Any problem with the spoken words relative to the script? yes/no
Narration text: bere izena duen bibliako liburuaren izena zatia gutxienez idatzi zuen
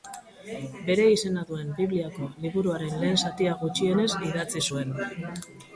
yes